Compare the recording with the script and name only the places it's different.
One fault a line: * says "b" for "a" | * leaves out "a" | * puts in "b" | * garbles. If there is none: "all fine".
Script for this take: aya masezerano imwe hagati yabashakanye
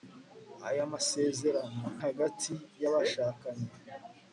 * leaves out "imwe"